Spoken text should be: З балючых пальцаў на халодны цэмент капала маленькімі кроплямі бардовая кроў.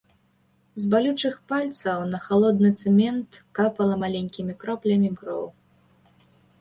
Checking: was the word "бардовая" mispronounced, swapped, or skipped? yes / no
yes